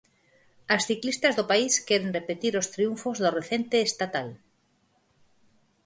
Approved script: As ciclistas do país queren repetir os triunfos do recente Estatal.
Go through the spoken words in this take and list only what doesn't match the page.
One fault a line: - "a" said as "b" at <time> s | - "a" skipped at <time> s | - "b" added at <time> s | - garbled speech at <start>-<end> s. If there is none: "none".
none